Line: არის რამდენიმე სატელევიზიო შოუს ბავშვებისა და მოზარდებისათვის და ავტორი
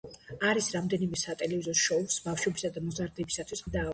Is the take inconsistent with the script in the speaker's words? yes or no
no